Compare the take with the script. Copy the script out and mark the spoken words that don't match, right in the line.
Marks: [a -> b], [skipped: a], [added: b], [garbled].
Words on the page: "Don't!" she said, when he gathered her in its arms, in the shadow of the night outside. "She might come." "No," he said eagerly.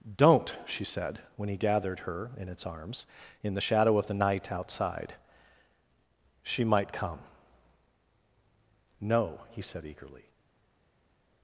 "Don't!" she said, when he gathered her in its arms, in the shadow of the night outside. "She might come." "No," he said eagerly.